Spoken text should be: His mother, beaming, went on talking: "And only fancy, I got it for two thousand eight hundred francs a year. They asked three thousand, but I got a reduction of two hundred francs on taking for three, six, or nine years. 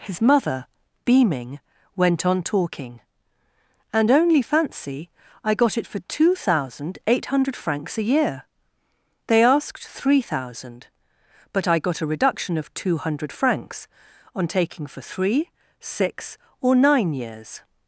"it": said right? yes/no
yes